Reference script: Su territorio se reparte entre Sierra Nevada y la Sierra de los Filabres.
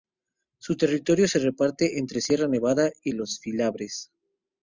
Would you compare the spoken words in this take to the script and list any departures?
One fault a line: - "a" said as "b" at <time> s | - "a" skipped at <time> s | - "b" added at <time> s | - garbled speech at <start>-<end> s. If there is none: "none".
- "la Sierra de" skipped at 3.1 s